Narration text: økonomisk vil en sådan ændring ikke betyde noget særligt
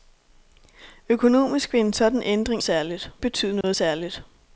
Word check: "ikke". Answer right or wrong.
wrong